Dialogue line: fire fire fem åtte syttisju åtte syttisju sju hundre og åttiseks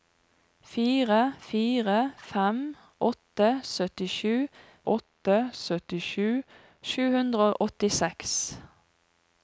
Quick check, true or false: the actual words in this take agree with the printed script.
true